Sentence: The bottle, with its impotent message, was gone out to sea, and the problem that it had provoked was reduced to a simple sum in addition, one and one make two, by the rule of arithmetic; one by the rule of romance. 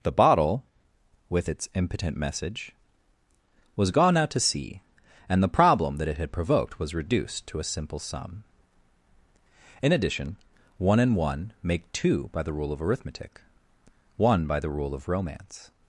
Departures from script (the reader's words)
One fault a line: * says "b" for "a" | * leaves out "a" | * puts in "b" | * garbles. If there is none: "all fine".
all fine